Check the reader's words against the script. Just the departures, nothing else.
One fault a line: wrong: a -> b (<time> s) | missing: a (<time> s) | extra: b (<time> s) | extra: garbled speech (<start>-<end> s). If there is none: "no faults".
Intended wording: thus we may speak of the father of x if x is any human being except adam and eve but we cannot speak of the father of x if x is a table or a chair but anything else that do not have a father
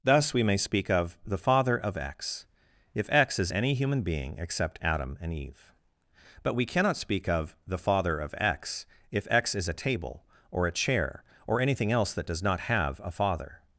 wrong: but -> or (11.5 s)
wrong: do -> does (12.3 s)